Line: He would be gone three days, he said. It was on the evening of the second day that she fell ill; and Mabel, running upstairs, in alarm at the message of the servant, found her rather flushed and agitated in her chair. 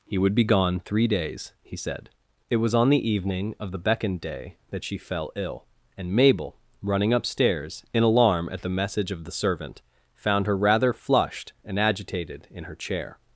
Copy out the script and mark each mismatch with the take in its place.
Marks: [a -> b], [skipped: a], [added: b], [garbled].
He would be gone three days, he said. It was on the evening of the [second -> beckoned] day that she fell ill; and Mabel, running upstairs, in alarm at the message of the servant, found her rather flushed and agitated in her chair.